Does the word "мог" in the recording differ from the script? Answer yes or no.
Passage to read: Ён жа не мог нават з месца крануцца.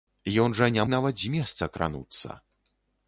yes